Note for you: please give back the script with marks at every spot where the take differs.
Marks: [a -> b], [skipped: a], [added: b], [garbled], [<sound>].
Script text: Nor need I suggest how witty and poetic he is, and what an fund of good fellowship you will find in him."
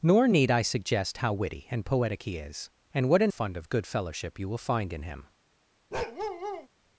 Nor need I suggest how witty and poetic he is, and what an fund of good fellowship you will find in him." [bark]